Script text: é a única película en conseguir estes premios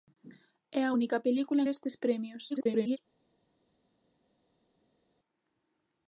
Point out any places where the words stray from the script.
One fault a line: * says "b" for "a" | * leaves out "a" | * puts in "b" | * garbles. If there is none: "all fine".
* leaves out "en conseguir"
* garbles